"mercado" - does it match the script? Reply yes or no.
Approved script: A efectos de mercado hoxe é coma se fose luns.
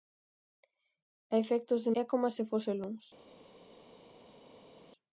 no